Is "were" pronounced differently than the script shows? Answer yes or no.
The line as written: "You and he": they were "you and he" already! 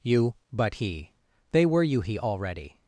no